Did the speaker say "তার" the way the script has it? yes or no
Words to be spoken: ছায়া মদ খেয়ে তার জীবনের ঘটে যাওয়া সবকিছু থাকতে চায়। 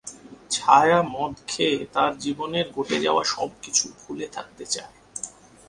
yes